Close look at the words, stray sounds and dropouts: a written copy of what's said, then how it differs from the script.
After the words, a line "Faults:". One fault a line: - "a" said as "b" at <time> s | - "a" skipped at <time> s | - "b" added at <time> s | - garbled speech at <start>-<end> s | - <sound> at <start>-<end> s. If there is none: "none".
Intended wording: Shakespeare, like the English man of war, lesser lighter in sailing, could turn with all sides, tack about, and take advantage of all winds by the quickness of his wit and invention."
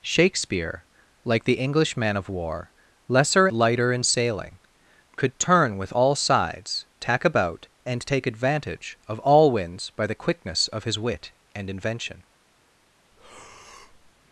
Shakespeare, like the English man of war, lesser lighter in sailing, could turn with all sides, tack about, and take advantage of all winds by the quickness of his wit and invention."
Faults:
- breath at 13.1-14.1 s